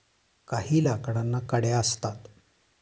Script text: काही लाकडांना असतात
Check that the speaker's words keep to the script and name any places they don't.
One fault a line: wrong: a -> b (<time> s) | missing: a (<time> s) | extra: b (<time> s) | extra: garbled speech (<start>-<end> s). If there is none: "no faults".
extra: कड्या (1.5 s)